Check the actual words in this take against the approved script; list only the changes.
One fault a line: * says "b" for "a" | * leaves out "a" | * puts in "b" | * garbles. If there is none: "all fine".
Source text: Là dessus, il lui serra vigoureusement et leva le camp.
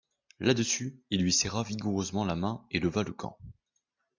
* puts in "la main"